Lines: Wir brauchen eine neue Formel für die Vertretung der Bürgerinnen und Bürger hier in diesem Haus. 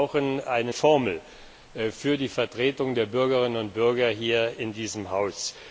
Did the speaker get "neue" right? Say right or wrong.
wrong